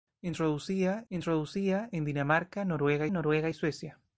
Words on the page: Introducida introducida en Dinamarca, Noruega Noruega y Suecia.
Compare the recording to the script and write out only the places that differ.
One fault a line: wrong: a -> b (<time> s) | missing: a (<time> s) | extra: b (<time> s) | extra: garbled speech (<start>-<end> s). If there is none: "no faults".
no faults